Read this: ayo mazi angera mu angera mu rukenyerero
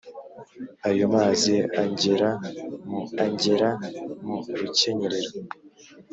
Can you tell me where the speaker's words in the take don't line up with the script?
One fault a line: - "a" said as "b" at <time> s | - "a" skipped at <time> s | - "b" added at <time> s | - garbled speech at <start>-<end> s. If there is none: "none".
none